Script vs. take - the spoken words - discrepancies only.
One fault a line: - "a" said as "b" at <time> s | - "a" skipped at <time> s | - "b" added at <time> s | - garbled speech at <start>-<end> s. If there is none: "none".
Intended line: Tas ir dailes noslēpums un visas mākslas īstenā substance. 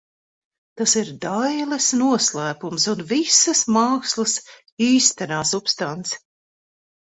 none